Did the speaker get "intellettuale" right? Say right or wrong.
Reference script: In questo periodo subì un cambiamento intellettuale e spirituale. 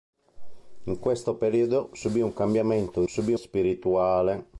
wrong